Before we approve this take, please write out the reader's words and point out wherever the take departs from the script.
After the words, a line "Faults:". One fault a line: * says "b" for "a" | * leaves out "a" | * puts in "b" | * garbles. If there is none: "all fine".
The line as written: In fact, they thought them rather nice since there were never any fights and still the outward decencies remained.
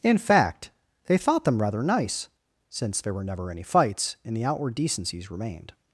In fact, they thought them rather nice since there were never any fights and the outward decencies remained.
Faults:
* leaves out "still"